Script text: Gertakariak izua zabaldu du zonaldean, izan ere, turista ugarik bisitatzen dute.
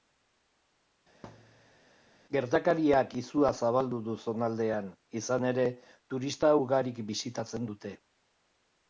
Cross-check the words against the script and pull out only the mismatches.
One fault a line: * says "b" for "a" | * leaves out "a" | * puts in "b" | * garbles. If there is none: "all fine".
all fine